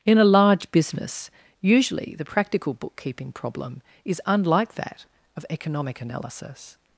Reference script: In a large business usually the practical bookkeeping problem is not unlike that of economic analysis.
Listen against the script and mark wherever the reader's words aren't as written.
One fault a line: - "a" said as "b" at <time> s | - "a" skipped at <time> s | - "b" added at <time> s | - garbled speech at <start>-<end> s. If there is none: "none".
- "not" skipped at 4.2 s